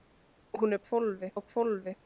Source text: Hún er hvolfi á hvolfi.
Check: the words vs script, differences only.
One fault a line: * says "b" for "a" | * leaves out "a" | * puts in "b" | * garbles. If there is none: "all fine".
all fine